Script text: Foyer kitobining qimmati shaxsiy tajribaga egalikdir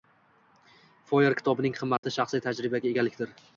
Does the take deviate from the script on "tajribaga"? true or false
false